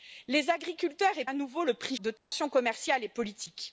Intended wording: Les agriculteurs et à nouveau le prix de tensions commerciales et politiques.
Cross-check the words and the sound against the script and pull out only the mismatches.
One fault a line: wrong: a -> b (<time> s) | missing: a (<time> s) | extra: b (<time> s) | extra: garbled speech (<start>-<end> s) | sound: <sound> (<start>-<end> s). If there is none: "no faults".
sound: dropout (2.2-2.3 s)